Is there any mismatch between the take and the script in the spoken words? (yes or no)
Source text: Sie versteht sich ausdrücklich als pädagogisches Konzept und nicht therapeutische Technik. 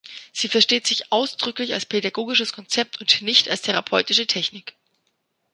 yes